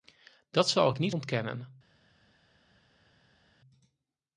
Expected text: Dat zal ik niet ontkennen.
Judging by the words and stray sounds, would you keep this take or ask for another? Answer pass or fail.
pass